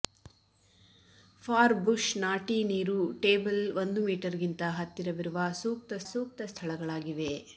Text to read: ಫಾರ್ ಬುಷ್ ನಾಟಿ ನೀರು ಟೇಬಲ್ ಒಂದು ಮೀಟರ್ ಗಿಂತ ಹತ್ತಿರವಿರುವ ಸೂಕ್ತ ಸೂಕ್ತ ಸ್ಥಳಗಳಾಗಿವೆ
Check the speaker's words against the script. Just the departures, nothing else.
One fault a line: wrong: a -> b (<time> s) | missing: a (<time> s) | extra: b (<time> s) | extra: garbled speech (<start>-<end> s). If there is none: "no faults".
no faults